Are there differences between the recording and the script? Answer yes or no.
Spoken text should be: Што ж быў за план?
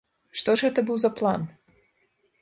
yes